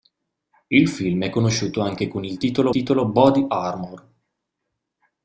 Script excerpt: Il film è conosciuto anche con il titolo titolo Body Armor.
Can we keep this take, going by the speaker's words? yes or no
yes